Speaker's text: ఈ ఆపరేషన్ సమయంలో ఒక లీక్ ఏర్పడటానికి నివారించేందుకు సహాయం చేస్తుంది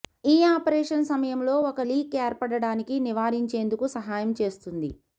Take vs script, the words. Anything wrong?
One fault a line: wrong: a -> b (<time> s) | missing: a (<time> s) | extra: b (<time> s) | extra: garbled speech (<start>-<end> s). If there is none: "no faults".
no faults